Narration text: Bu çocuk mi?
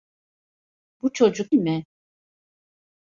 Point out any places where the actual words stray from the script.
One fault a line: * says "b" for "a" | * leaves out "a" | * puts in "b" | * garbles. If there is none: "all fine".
all fine